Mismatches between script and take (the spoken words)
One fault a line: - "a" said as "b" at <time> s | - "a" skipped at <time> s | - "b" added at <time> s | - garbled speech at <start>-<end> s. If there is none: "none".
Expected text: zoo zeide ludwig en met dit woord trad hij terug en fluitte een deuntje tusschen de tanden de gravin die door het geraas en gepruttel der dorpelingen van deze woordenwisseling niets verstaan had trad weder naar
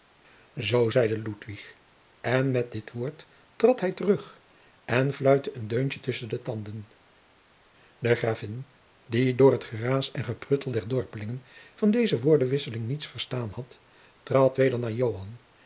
none